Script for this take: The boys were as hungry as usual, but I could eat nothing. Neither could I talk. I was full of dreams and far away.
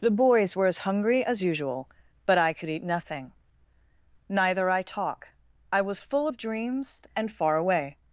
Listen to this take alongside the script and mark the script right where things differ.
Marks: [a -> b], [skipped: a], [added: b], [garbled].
The boys were as hungry as usual, but I could eat nothing. Neither [skipped: could] I talk. I was full of dreams and far away.